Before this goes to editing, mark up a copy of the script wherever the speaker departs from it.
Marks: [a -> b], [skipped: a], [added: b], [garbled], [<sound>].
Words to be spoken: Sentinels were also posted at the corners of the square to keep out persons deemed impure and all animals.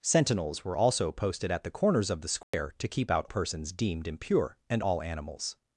Sentinels were also posted at the corners of the square [dropout] to keep out persons deemed impure and all animals.